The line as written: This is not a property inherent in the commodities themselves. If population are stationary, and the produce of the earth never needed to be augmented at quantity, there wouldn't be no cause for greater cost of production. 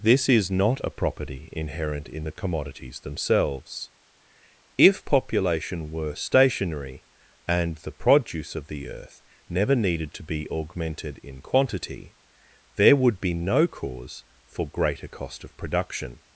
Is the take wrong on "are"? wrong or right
wrong